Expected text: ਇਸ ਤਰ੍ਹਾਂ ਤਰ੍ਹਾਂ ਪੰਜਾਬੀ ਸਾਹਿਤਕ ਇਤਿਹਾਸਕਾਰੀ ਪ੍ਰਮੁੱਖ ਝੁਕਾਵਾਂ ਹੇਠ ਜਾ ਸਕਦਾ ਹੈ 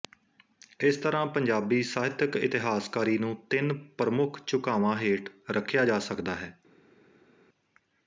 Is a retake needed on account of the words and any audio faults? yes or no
yes